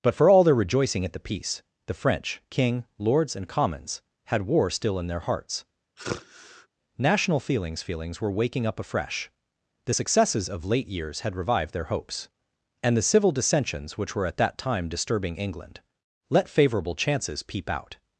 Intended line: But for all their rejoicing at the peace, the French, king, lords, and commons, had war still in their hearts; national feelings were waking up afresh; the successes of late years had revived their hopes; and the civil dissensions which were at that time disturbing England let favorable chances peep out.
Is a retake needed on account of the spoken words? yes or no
yes